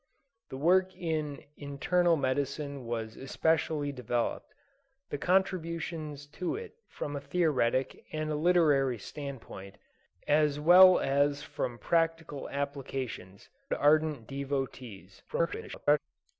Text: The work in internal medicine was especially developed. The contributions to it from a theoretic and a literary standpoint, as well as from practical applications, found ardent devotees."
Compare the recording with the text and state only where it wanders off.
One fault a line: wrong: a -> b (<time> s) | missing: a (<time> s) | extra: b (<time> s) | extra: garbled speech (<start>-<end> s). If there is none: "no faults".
missing: found (13.5 s)
extra: garbled speech (15.3-16.0 s)